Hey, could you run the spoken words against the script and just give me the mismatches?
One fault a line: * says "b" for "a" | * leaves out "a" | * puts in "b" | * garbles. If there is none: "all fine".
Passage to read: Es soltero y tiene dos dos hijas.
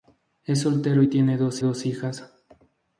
all fine